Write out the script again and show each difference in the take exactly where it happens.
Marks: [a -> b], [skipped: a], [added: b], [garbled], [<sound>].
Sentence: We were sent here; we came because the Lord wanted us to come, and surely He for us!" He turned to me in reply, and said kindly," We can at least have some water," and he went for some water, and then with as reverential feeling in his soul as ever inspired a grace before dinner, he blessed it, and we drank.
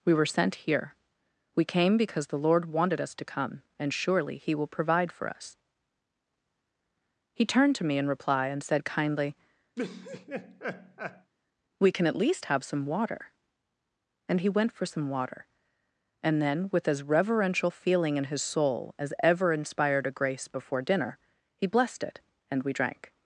We were sent here; we came because the Lord wanted us to come, and surely He [added: will provide] for us!" He turned to me in reply, and said kindly," [laugh] We can at least have some water," and he went for some water, and then with as reverential feeling in his soul as ever inspired a grace before dinner, he blessed it, and we drank.